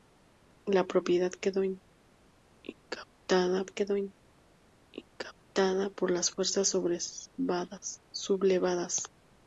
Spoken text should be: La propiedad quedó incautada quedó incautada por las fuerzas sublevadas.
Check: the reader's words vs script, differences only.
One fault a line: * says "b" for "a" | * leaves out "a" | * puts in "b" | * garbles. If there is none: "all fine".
all fine